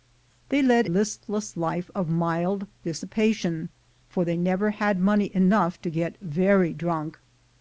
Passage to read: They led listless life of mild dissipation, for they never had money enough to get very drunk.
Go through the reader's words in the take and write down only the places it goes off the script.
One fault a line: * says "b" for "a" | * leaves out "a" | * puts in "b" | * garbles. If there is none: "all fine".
all fine